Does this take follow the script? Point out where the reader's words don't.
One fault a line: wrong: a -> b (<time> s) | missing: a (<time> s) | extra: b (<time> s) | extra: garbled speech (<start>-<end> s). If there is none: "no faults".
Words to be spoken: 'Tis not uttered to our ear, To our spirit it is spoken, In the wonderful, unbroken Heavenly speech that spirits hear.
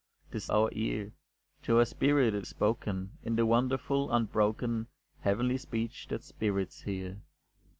missing: not uttered to (0.5 s)
missing: is (2.5 s)